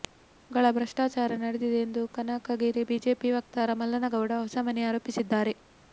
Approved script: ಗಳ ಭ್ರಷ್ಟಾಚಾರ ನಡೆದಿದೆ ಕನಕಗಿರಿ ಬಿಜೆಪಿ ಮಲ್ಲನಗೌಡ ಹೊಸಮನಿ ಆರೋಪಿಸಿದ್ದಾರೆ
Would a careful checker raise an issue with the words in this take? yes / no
yes